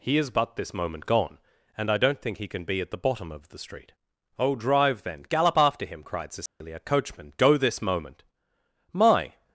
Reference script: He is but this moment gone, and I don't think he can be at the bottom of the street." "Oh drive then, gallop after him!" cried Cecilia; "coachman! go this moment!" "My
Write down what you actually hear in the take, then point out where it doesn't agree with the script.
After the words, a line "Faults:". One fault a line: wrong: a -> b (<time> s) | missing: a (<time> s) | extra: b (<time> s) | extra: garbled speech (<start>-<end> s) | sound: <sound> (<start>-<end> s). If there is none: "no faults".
He is but this moment gone, and I don't think he can be at the bottom of the street." "Oh drive then, gallop after him!" cried Cecilia; "coachman! go this moment!" "My
Faults:
sound: dropout (6.5-6.6 s)